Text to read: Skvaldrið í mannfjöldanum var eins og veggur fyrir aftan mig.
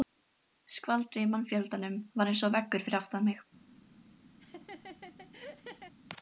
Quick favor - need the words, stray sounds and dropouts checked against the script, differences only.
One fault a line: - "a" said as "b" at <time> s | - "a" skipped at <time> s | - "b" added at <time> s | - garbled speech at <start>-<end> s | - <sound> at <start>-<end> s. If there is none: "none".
- laugh at 4.4-5.9 s